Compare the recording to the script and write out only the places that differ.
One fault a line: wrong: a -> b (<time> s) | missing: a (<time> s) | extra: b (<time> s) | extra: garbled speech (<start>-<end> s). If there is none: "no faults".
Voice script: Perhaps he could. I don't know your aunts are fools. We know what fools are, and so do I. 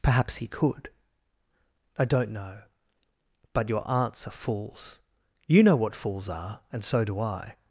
extra: but (3.5 s)
wrong: We -> You (5.5 s)